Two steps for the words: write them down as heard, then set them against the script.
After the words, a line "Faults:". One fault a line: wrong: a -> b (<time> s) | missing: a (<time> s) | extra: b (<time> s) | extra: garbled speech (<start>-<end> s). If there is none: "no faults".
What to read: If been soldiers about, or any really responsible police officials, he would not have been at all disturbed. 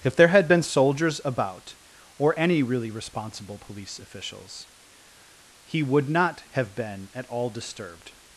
If there had been soldiers about, or any really responsible police officials, he would not have been at all disturbed.
Faults:
extra: there had (0.1 s)